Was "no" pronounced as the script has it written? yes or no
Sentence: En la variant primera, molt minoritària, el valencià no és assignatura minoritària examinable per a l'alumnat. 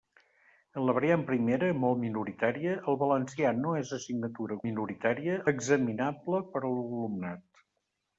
yes